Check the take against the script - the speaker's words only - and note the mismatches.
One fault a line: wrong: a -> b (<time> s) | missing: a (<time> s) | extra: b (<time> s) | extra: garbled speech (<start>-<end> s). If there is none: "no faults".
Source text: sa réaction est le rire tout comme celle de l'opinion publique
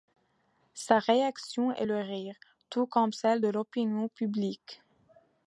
no faults